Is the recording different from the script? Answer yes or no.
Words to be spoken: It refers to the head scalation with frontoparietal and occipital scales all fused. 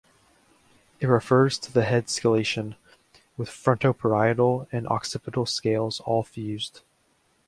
no